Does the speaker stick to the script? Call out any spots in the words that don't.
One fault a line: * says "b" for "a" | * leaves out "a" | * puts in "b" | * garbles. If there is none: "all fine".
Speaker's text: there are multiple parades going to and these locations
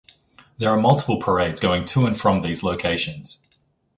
* puts in "from"